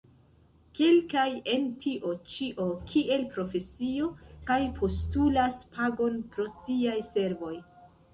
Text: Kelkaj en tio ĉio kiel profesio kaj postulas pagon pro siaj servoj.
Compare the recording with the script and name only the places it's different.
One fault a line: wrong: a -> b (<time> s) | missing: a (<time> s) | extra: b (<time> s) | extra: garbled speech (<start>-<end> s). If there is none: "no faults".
no faults